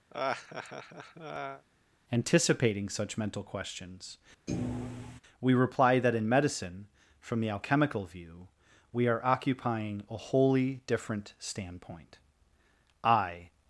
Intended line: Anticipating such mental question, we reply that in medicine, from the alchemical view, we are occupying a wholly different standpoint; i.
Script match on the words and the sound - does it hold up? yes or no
no